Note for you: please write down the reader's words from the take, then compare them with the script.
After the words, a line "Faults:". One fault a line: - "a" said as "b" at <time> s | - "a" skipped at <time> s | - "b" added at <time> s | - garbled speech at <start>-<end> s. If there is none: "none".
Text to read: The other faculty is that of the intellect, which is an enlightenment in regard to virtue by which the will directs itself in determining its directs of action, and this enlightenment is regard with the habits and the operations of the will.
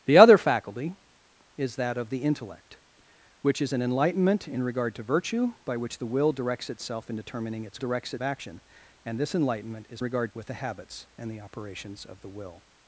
The other faculty is that of the intellect, which is an enlightenment in regard to virtue by which the will directs itself in determining its directs of action, and this enlightenment is regard with the habits and the operations of the will.
Faults:
none